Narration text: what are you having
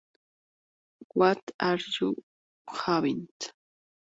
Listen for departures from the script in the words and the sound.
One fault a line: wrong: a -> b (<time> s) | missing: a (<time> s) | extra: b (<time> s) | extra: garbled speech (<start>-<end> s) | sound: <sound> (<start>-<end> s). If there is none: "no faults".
no faults